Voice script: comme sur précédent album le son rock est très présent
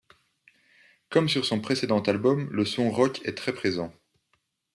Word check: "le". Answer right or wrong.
right